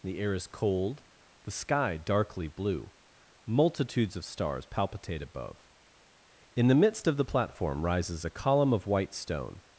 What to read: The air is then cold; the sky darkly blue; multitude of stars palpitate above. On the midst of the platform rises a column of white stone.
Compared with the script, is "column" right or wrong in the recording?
right